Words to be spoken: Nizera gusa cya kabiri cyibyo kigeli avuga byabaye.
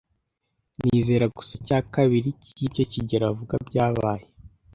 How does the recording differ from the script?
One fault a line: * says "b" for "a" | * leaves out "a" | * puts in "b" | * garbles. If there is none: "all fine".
all fine